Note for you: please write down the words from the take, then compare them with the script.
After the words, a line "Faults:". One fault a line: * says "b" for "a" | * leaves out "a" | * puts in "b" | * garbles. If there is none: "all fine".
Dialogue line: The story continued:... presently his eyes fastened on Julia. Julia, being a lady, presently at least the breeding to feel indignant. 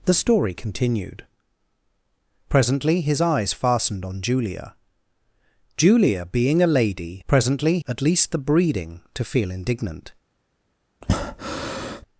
The story continued:... presently his eyes fastened on Julia. Julia, being a lady, presently at least the breeding to feel indignant.
Faults:
all fine